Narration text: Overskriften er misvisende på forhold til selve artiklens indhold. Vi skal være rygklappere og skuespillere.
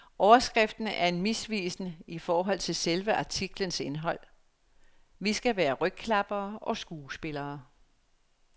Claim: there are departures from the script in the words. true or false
true